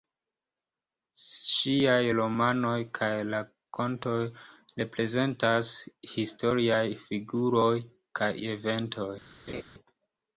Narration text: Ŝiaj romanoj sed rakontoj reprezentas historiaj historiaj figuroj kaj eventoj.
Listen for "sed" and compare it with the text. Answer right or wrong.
wrong